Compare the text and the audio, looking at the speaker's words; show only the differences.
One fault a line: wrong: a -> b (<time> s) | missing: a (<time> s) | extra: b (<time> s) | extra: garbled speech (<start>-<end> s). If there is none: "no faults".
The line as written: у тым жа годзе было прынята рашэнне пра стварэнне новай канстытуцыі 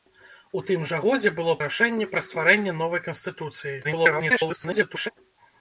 missing: прынята (1.5 s)
extra: garbled speech (3.8-5.1 s)